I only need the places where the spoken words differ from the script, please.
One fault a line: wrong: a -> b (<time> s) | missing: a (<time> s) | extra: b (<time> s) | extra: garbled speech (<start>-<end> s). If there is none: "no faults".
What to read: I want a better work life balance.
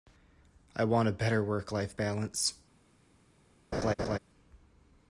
no faults